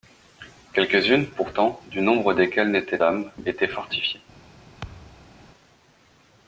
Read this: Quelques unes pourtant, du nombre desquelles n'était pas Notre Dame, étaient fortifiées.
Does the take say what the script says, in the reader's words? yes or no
no